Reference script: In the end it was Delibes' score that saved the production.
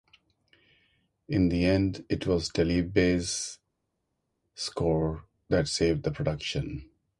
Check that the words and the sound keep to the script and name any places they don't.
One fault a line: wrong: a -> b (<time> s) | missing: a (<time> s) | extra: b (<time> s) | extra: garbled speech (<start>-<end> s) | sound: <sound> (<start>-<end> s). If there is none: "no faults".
no faults